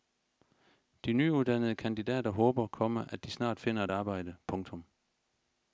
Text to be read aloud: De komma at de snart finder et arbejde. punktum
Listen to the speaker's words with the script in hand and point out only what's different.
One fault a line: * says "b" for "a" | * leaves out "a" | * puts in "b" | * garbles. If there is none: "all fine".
* puts in "nyuddannede kandidater håber"